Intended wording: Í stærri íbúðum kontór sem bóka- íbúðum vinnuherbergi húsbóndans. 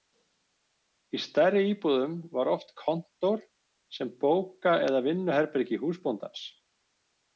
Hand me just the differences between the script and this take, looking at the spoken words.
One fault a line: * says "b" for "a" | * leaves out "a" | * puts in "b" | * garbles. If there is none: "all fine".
* puts in "var oft"
* says "eða" for "íbúðum"